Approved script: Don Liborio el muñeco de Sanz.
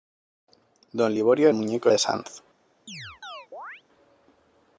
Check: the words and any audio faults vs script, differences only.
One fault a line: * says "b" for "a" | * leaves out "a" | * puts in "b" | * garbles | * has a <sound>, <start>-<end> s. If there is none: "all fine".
* has a chirp, 2.9-3.8 s